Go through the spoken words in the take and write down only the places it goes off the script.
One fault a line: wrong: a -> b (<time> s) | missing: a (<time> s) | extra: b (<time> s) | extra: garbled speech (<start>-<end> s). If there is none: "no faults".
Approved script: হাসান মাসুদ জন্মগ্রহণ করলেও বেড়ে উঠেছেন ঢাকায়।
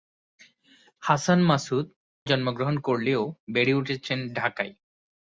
no faults